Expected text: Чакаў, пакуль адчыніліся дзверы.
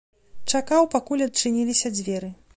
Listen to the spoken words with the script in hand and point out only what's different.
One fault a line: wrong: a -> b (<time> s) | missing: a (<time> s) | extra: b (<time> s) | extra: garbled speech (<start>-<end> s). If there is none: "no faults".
no faults